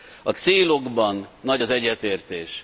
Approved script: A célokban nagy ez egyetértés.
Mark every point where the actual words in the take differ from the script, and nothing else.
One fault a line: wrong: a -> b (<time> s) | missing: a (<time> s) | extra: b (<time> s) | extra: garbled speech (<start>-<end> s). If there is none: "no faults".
wrong: ez -> az (1.6 s)